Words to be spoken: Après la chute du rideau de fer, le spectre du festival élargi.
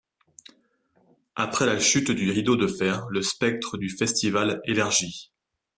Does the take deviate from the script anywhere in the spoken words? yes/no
no